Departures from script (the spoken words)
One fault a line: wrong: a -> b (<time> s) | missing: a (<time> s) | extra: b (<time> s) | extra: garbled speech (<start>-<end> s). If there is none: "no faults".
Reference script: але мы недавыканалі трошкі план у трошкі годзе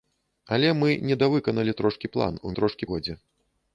no faults